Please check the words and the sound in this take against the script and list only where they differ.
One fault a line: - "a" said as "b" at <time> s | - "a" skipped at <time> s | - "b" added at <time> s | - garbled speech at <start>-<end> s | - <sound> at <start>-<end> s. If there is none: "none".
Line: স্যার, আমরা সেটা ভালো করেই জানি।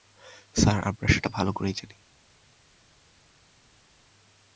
none